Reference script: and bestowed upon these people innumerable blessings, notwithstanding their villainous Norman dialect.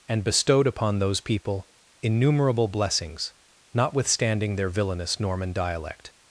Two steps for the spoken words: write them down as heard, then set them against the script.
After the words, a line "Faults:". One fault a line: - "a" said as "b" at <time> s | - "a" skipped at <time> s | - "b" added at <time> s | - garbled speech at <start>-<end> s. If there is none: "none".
and bestowed upon those people innumerable blessings, notwithstanding their villainous Norman dialect.
Faults:
- "these" said as "those" at 1.0 s